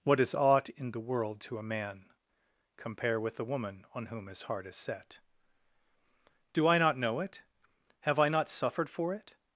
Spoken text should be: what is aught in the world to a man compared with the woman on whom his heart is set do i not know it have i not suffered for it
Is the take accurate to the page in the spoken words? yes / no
no